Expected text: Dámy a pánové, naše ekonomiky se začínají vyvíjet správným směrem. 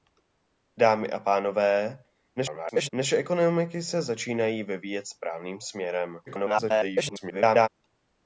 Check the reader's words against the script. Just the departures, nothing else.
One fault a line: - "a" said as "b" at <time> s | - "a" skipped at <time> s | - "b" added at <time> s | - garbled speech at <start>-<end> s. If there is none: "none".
- garbled speech at 2.4-2.9 s
- garbled speech at 6.3-7.7 s